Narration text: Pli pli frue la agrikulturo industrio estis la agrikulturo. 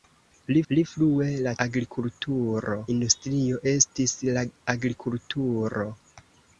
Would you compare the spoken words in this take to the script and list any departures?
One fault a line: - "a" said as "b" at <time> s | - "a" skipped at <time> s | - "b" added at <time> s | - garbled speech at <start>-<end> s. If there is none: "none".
none